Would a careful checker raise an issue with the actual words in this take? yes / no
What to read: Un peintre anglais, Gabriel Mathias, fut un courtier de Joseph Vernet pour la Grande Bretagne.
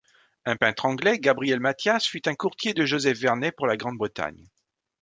no